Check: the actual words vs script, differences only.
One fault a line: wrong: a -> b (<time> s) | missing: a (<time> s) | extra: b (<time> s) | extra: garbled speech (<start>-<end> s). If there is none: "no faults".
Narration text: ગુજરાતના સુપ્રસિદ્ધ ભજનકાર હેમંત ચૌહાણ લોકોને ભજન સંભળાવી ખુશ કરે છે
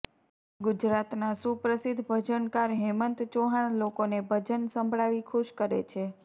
no faults